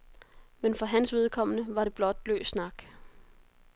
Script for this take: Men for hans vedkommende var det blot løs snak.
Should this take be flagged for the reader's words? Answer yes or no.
no